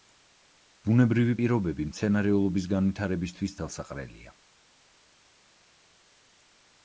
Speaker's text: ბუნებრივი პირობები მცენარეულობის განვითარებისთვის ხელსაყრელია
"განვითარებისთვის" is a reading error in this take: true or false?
false